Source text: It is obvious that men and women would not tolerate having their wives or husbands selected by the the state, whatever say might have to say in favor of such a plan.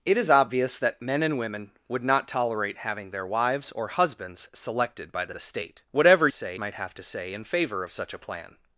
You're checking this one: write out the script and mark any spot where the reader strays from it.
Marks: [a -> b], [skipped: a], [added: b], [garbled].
It is obvious that men and women would not tolerate having their wives or husbands selected by the the state, whatever say might have to say in favor of such a plan.